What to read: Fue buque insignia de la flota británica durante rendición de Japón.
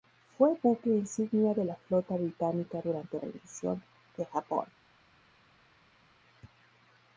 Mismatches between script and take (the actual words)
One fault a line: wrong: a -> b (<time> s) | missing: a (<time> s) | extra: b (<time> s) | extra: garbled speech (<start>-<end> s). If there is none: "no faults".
no faults